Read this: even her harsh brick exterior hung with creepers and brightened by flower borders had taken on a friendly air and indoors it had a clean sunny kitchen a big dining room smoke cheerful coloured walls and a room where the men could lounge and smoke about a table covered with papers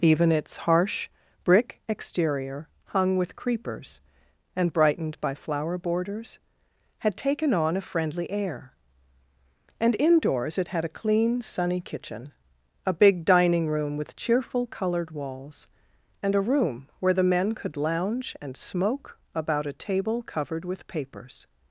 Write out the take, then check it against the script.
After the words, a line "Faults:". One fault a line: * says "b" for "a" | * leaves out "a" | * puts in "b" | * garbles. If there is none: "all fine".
even its harsh brick exterior hung with creepers and brightened by flower borders had taken on a friendly air and indoors it had a clean sunny kitchen a big dining room with cheerful coloured walls and a room where the men could lounge and smoke about a table covered with papers
Faults:
* says "its" for "her"
* says "with" for "smoke"